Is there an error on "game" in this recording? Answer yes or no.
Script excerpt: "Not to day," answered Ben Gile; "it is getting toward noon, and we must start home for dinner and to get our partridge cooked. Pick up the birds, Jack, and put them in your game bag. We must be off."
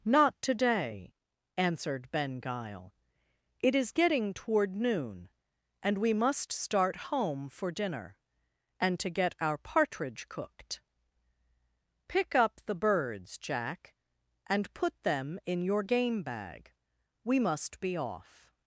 no